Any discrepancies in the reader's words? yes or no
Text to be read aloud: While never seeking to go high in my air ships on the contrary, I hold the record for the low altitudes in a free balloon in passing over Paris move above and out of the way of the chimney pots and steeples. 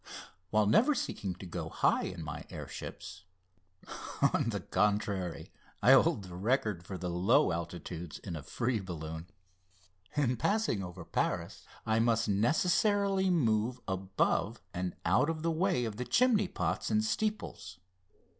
yes